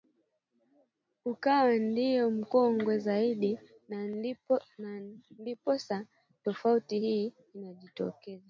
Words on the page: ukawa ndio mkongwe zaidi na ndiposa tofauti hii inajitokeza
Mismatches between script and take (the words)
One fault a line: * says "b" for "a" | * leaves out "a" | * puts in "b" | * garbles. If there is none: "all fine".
all fine